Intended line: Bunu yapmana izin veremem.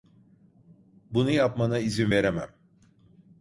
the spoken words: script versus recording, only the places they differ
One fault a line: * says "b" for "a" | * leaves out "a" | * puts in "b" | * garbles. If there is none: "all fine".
all fine